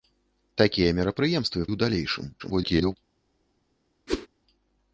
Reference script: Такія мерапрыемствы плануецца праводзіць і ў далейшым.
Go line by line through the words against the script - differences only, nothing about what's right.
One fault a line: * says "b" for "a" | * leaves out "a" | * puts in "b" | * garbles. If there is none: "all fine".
* leaves out "плануецца праводзіць і"
* garbles